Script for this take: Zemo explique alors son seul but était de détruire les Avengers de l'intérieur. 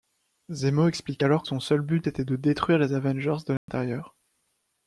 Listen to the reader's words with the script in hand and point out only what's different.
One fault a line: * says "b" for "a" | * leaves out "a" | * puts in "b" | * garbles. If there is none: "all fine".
all fine